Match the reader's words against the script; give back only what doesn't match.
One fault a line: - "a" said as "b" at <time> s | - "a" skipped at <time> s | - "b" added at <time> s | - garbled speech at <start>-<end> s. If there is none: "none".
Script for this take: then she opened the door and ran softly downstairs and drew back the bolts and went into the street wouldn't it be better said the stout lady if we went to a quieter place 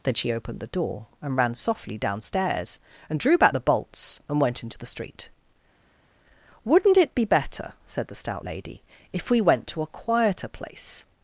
none